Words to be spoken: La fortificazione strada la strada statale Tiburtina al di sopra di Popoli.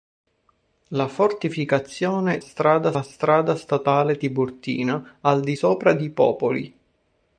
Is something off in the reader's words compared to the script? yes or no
no